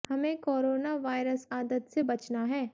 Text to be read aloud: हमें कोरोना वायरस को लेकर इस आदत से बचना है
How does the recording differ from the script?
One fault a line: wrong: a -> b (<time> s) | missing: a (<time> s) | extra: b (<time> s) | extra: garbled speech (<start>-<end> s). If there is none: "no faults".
missing: को लेकर इस (1.4 s)